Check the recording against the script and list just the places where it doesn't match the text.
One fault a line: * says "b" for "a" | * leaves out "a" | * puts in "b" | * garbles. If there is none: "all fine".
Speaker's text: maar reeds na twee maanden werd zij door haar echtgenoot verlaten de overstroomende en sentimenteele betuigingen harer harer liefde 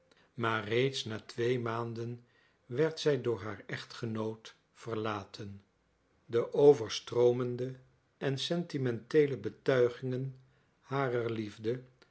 * leaves out "harer"